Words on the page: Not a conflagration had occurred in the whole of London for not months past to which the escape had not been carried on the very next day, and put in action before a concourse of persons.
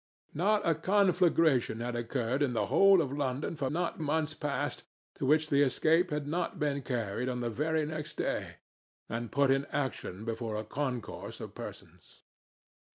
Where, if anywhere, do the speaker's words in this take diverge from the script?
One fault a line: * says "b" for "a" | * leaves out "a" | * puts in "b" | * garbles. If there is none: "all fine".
all fine